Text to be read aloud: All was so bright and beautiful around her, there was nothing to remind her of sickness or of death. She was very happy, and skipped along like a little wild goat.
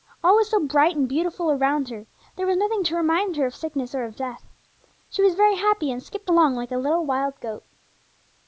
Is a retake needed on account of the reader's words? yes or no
no